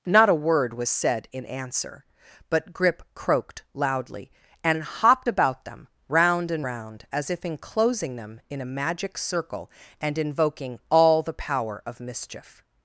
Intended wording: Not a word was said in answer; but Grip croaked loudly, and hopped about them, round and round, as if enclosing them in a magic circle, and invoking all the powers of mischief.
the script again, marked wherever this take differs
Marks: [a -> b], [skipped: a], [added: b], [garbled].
Not a word was said in answer; but Grip croaked loudly, and hopped about them, round and round, as if enclosing them in a magic circle, and invoking all the [powers -> power] of mischief.